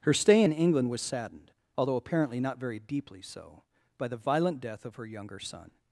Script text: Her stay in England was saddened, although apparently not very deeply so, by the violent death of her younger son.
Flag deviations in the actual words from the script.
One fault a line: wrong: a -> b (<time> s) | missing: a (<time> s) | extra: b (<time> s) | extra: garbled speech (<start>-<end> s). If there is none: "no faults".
no faults